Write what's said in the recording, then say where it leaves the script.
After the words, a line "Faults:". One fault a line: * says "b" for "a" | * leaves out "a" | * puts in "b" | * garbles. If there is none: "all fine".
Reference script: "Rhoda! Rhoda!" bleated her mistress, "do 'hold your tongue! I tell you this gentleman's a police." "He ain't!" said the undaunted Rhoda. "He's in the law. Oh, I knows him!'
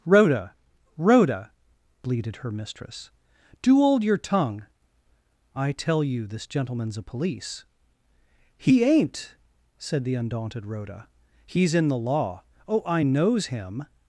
"Rhoda! Rhoda!" bleated her mistress, "do 'hold your tongue! I tell you this gentleman's a police." "He ain't!" said the undaunted Rhoda. "He's in the law. Oh, I knows him!'
Faults:
all fine